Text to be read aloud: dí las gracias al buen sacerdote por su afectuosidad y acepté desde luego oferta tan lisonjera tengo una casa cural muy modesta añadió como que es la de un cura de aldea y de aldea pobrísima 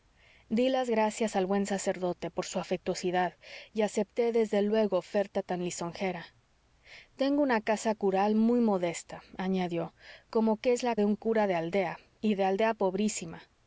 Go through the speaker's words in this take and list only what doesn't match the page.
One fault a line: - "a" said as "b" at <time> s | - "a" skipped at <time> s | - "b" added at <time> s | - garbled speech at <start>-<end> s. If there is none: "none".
none